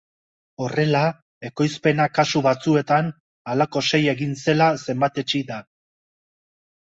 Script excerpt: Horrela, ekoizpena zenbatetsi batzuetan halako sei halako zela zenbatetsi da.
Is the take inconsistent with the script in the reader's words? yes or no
yes